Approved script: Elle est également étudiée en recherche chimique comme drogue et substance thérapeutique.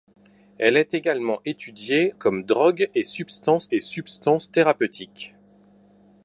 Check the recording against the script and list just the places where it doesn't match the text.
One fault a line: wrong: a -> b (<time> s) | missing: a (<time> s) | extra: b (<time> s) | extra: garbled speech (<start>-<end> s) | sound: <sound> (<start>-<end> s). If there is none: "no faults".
wrong: en recherche chimique comme drogue -> comme drogue et substance (2.2 s)